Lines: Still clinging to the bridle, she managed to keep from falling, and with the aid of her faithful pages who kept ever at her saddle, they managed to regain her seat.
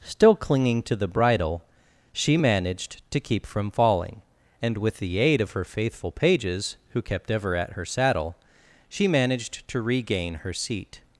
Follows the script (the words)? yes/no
no